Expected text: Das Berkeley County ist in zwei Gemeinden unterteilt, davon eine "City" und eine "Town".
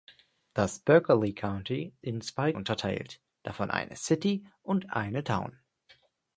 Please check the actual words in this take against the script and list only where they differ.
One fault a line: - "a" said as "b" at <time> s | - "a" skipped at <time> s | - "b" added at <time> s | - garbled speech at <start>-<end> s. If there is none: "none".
- "ist" skipped at 1.9 s
- "Gemeinden" skipped at 2.5 s